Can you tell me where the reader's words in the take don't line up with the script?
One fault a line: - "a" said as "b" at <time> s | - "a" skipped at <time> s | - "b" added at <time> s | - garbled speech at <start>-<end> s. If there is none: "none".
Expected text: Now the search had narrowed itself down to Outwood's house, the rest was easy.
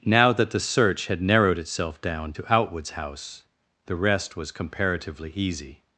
- "that" added at 0.3 s
- "comparatively" added at 4.5 s